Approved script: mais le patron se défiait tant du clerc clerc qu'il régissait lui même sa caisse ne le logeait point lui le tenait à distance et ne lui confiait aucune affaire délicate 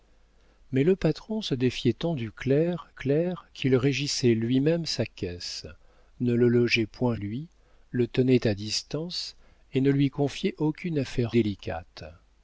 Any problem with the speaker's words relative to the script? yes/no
no